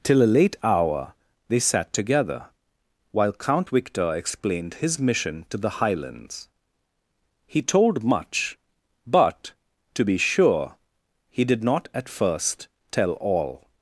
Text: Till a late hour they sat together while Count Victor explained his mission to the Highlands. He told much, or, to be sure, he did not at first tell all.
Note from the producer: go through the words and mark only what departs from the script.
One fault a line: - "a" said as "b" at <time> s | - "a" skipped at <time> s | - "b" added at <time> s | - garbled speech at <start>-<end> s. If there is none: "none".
- "or" said as "but" at 9.1 s